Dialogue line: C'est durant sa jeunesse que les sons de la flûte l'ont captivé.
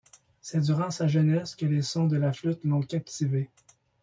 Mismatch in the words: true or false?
false